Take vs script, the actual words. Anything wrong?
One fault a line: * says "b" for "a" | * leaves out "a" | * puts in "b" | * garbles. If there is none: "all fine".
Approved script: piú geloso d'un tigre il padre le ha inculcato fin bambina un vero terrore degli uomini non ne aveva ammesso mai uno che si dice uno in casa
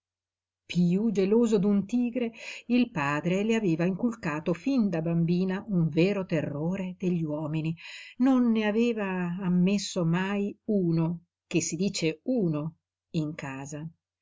* says "aveva" for "ha"
* puts in "da"